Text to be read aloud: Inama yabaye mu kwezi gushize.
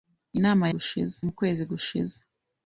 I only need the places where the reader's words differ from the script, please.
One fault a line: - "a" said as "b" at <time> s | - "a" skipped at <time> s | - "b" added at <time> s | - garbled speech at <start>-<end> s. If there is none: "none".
- "yabaye" said as "gushize" at 0.7 s